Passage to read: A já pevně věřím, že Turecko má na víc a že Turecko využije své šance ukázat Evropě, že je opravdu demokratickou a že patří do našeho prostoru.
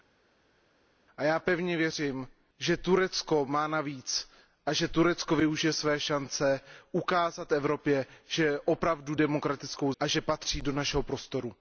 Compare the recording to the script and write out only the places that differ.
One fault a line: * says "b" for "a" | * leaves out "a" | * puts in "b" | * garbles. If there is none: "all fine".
all fine